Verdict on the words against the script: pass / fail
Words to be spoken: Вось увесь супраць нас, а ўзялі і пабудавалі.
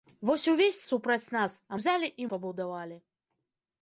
pass